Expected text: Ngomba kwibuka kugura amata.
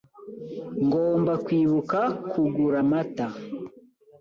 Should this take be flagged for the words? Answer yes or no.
no